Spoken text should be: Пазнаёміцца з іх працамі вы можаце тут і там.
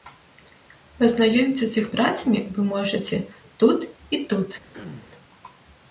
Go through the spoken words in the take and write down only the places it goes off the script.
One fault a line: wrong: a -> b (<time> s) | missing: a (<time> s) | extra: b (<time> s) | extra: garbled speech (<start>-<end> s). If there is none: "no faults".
wrong: там -> тут (4.3 s)